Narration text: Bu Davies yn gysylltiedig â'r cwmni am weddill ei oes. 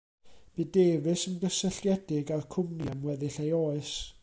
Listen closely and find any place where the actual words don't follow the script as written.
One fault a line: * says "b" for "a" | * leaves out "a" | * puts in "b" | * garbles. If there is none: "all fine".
all fine